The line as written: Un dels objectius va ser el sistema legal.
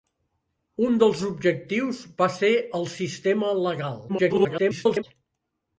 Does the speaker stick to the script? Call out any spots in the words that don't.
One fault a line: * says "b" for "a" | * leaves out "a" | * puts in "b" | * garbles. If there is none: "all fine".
* garbles